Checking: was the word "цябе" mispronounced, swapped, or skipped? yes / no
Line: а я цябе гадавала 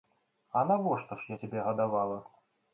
no